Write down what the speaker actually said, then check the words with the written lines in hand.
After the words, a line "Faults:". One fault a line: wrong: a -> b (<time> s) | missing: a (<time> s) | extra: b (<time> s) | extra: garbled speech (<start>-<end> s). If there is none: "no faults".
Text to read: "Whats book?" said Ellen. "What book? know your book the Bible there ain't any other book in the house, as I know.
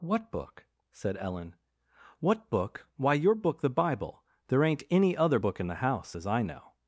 "What book?" said Ellen. "What book? why your book the Bible there ain't any other book in the house, as I know.
Faults:
wrong: Whats -> What (0.0 s)
wrong: know -> why (3.0 s)